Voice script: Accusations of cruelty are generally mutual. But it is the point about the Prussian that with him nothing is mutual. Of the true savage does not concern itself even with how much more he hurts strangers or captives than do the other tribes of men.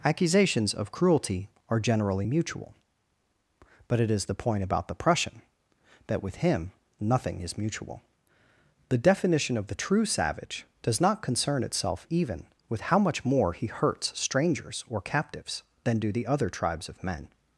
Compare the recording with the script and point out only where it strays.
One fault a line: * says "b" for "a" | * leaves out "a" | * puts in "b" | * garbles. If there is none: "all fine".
* puts in "The definition"